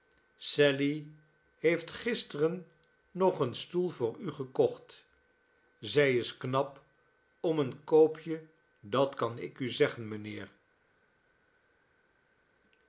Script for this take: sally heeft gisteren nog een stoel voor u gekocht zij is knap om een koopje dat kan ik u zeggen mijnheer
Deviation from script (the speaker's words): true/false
false